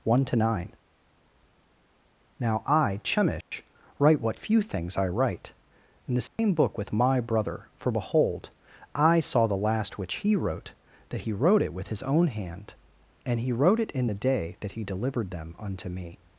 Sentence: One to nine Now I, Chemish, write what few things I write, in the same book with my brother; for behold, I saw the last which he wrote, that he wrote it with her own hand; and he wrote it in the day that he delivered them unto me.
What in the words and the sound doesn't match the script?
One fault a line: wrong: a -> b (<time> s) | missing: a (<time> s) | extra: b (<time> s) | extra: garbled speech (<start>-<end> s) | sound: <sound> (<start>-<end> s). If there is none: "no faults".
sound: dropout (3.4-3.5 s)
sound: dropout (6.3-6.4 s)
wrong: her -> his (11.9 s)